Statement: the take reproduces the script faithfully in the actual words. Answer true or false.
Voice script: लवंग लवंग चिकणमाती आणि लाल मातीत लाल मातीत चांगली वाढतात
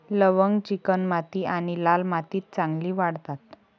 false